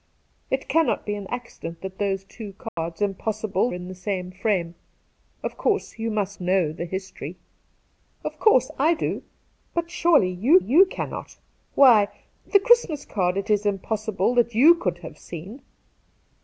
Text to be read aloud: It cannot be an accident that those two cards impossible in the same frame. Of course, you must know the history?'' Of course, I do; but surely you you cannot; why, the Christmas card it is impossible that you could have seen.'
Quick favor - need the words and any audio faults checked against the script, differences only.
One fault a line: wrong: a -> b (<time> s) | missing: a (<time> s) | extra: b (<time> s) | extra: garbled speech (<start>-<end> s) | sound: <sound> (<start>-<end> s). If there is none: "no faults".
sound: dropout (2.7-2.8 s)